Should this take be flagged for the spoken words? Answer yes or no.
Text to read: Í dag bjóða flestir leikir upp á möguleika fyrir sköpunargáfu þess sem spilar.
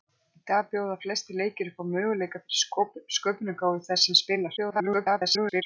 yes